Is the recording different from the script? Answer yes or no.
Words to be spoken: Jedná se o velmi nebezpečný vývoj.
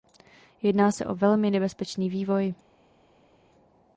no